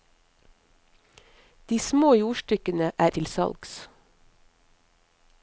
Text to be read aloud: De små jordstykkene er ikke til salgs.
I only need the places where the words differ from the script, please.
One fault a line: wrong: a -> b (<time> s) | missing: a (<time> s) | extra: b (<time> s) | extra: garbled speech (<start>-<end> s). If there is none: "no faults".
missing: ikke (3.1 s)